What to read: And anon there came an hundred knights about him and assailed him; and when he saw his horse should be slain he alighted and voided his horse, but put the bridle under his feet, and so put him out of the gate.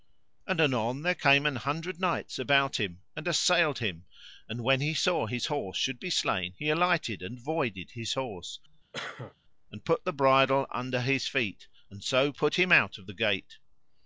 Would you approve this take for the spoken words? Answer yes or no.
no